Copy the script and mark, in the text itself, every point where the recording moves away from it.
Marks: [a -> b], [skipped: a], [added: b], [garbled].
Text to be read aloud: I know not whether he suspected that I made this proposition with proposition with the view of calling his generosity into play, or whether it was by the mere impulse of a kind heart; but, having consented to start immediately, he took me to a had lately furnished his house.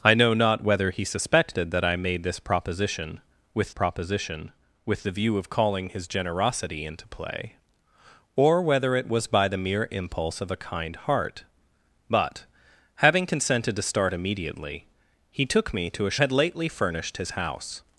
I know not whether he suspected that I made this proposition with proposition with the view of calling his generosity into play, or whether it was by the mere impulse of a kind heart; but, having consented to start immediately, he took me to a had lately furnished his house.